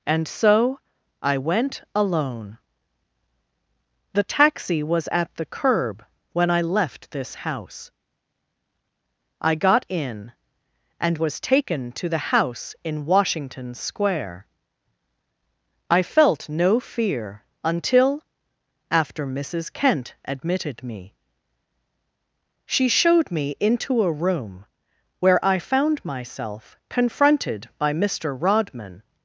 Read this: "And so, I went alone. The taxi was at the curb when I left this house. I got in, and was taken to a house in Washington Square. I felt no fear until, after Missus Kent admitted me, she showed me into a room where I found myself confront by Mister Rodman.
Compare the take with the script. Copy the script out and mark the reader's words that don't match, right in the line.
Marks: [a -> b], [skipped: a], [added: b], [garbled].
"And so, I went alone. The taxi was at the curb when I left this house. I got in, and was taken to [a -> the] house in Washington Square. I felt no fear until, after Missus Kent admitted me, she showed me into a room where I found myself [confront -> confronted] by Mister Rodman.